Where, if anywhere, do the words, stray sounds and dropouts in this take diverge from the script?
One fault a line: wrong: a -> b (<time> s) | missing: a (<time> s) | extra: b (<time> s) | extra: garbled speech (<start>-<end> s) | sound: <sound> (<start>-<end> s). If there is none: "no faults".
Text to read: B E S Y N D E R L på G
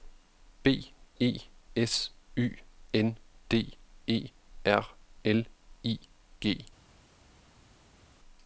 wrong: på -> I (5.8 s)